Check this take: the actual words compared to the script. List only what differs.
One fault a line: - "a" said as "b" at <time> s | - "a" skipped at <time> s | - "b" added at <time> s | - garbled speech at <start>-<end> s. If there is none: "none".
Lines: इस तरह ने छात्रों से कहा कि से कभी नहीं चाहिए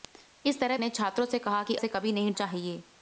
none